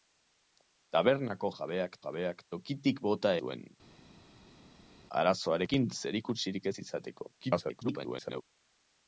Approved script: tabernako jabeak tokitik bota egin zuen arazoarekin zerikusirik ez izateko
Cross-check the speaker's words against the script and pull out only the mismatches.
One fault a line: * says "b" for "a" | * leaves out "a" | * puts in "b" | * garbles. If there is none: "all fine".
* puts in "jabeak"
* leaves out "egin"
* garbles